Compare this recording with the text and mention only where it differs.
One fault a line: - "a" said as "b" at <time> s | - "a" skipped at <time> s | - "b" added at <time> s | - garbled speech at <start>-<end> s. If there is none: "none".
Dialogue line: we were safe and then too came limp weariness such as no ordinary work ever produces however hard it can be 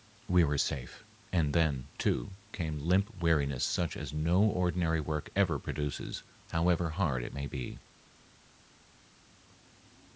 - "can" said as "may" at 7.3 s